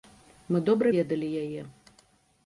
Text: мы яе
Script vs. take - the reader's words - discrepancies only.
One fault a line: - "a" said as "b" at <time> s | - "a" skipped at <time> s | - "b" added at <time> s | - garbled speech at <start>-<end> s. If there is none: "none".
- "добра ведалі" added at 0.7 s